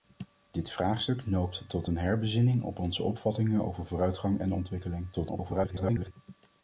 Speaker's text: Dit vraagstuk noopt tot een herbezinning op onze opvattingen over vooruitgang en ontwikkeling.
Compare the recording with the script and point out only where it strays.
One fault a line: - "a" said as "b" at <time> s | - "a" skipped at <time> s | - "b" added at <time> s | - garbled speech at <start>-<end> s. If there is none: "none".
- garbled speech at 5.1-6.1 s